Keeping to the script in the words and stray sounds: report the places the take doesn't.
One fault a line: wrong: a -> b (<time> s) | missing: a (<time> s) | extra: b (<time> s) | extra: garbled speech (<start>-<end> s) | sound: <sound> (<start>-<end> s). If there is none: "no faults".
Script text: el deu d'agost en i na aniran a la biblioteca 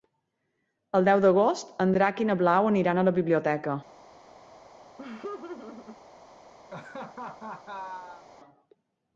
extra: drac (2.0 s)
extra: blau (2.4 s)
sound: laugh (5.0-6.0 s)
sound: laugh (6.7-8.2 s)